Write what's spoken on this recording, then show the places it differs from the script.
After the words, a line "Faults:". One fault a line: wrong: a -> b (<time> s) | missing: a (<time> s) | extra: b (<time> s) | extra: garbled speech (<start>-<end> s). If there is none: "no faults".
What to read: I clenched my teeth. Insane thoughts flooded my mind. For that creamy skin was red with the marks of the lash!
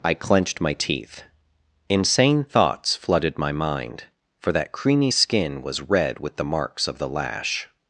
I clenched my teeth. Insane thoughts flooded my mind. For that creamy skin was red with the marks of the lash!
Faults:
no faults